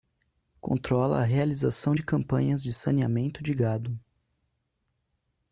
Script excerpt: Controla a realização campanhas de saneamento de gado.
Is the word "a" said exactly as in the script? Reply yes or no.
yes